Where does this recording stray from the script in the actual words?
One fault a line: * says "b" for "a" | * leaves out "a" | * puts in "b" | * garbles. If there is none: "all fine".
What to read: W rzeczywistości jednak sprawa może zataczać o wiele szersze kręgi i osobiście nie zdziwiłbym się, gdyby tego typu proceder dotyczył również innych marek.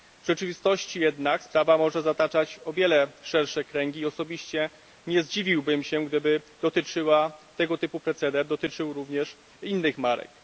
all fine